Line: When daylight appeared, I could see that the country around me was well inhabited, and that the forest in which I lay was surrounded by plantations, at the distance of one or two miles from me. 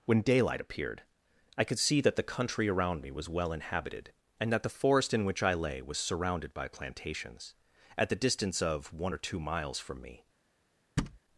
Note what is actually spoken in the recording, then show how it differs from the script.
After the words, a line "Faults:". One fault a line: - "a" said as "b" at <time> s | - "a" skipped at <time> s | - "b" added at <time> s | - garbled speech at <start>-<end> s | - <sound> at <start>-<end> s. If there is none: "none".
When daylight appeared, I could see that the country around me was well inhabited, and that the forest in which I lay was surrounded by plantations, at the distance of one or two miles from me.
Faults:
- thud at 11.0-11.2 s